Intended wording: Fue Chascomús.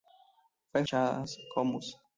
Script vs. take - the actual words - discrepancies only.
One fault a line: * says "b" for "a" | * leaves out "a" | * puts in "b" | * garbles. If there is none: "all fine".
all fine